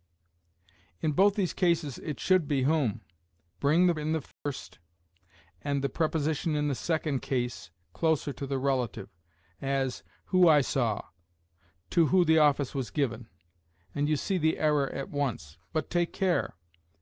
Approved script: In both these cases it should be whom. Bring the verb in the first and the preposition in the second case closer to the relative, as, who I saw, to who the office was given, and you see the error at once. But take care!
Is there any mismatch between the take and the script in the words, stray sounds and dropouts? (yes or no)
yes